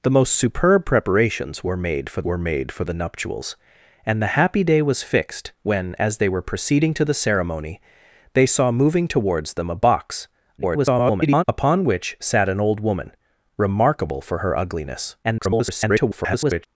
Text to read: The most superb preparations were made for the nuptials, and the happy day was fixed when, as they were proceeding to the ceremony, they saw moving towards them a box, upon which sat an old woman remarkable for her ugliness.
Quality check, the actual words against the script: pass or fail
fail